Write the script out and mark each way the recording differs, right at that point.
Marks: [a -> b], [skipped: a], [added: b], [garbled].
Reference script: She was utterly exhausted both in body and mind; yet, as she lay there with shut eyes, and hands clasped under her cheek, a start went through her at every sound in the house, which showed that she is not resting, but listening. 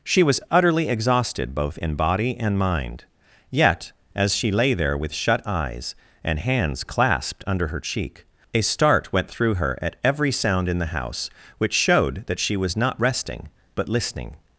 She was utterly exhausted both in body and mind; yet, as she lay there with shut eyes, and hands clasped under her cheek, a start went through her at every sound in the house, which showed that she [is -> was] not resting, but listening.